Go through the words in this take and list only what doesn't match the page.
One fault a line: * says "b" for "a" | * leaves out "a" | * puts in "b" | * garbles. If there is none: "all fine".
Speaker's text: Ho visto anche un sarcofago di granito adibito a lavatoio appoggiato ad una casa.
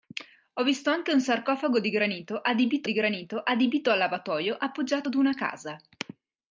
* puts in "di granito adibito"